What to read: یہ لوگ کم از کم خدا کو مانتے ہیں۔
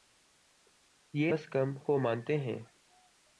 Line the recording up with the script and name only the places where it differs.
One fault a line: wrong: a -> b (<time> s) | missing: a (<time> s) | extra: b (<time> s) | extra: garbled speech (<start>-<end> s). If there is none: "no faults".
missing: لوگ کم (1.3 s)
missing: خدا (1.8 s)